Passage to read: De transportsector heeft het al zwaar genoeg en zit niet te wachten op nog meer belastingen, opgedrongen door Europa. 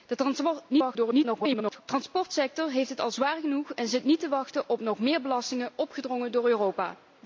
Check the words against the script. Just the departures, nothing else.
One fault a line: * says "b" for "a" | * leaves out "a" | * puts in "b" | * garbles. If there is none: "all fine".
* garbles